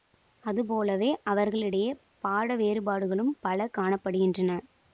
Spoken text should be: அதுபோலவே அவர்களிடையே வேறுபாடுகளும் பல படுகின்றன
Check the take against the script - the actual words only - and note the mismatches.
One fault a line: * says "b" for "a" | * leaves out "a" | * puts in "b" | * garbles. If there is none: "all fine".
* puts in "பாட"
* puts in "காண"